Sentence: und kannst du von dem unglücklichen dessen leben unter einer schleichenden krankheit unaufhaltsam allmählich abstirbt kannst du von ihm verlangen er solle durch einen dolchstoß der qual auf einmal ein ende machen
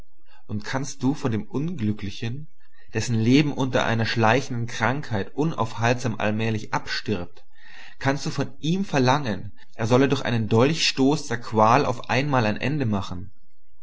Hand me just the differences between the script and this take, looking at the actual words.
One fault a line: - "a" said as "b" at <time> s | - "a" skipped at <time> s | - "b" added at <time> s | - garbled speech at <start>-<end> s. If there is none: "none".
none